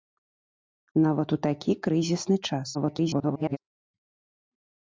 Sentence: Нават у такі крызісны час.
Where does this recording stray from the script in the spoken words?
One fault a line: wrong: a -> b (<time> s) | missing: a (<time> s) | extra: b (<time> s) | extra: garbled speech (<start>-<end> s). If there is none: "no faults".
extra: garbled speech (2.7-3.6 s)